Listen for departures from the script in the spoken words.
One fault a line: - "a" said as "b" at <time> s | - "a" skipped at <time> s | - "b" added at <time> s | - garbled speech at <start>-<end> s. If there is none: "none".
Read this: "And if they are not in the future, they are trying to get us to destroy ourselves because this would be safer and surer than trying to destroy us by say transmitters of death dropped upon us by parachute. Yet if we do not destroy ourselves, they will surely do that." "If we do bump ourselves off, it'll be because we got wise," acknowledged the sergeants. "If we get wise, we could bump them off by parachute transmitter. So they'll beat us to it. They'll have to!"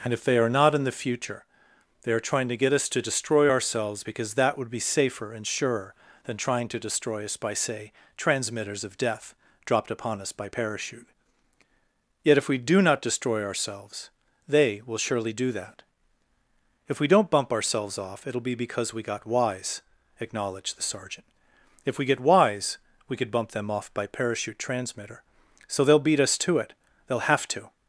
- "this" said as "that" at 4.3 s
- "do" said as "don't" at 17.1 s
- "sergeants" said as "sergeant" at 20.8 s